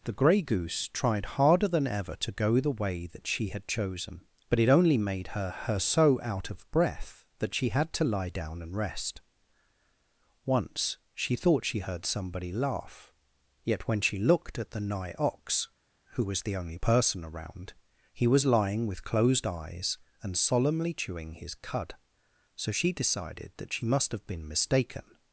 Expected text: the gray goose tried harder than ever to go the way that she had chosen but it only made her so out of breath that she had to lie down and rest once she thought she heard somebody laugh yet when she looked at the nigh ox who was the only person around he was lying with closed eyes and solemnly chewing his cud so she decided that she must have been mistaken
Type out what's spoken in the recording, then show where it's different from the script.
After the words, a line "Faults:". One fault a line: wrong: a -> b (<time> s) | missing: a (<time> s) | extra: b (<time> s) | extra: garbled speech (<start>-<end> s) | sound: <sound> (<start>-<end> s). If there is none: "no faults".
the gray goose tried harder than ever to go the way that she had chosen but it only made her her so out of breath that she had to lie down and rest once she thought she heard somebody laugh yet when she looked at the nigh ox who was the only person around he was lying with closed eyes and solemnly chewing his cud so she decided that she must have been mistaken
Faults:
extra: her (5.5 s)